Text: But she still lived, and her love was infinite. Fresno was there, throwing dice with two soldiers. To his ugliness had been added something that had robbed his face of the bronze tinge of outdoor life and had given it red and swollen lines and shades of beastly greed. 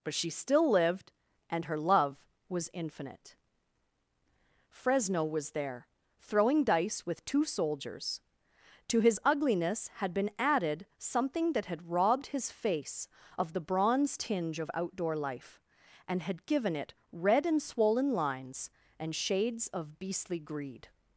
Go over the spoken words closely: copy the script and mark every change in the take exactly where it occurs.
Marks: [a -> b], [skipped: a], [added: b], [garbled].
But she still lived, and her love was infinite. Fresno was there, throwing dice with two soldiers. To his ugliness had been added something that had robbed his face of the bronze tinge of outdoor life and had given it red and swollen lines and shades of beastly greed.